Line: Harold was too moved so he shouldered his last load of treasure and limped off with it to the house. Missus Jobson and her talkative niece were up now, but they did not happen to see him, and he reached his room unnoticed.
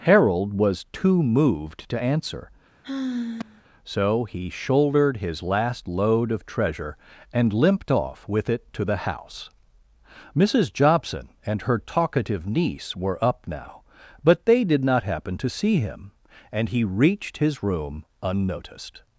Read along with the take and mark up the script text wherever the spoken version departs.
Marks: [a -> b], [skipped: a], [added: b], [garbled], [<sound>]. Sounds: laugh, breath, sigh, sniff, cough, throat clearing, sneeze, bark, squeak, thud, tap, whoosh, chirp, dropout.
Harold was too moved [added: to answer] [sigh] so he shouldered his last load of treasure and limped off with it to the house. Missus Jobson and her talkative niece were up now, but they did not happen to see him, and he reached his room unnoticed.